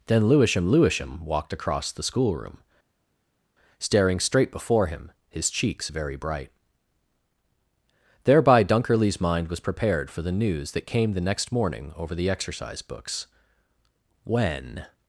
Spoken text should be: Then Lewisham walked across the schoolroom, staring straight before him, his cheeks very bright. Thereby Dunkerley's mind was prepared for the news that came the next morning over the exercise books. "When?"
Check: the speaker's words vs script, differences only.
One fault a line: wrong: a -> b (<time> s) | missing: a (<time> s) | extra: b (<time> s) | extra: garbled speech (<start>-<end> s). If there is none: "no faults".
extra: Lewisham (0.7 s)